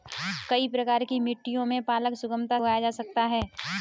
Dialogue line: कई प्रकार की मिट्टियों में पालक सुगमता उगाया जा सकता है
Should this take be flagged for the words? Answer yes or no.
no